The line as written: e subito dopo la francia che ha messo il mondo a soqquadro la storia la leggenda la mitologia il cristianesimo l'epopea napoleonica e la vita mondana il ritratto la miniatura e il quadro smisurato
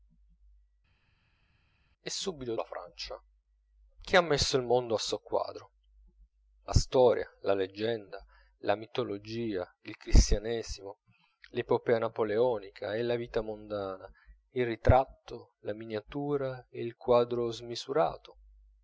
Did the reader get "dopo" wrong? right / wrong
wrong